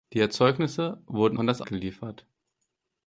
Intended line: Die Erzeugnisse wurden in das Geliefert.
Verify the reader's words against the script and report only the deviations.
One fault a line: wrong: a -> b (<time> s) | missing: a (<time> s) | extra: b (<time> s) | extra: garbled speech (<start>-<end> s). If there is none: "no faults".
no faults